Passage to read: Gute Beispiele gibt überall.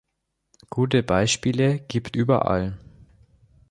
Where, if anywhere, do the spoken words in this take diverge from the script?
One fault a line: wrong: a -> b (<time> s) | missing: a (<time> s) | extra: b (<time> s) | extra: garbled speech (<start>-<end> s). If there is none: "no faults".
no faults